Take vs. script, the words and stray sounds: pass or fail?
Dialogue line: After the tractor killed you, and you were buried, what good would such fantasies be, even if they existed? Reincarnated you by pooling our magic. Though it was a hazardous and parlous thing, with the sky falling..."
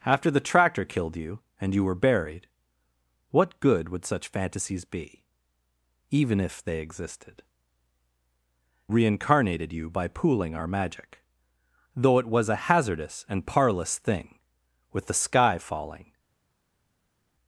pass